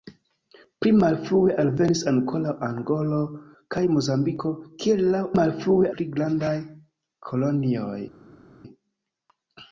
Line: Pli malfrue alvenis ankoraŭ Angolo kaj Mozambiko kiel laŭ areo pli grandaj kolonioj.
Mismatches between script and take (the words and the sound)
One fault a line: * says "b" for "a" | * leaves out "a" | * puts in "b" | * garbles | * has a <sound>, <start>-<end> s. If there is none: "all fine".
* says "malfrue" for "areo"